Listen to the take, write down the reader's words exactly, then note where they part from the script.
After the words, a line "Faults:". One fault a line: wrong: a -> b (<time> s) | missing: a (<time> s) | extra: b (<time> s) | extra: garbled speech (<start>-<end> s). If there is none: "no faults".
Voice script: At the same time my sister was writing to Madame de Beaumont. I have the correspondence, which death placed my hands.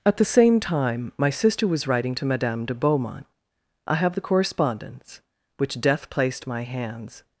At the same time my sister was writing to Madame de Beaumont. I have the correspondence, which death placed my hands.
Faults:
no faults